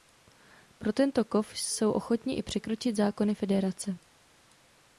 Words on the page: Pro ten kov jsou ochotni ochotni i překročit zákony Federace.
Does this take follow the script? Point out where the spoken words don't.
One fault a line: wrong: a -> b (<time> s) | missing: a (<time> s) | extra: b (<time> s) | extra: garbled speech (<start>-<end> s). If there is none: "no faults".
wrong: ten -> tento (0.9 s)
missing: ochotni (2.4 s)